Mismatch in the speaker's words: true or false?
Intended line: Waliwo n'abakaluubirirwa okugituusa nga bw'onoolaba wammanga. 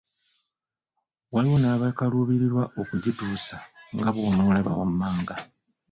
false